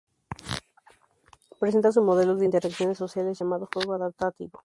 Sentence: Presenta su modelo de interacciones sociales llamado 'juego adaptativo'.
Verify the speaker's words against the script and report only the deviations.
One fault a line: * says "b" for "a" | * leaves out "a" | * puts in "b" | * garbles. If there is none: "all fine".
all fine